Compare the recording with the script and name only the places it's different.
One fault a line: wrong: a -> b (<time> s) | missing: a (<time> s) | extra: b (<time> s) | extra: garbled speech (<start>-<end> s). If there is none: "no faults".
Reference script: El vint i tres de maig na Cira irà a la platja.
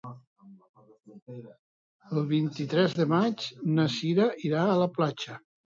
no faults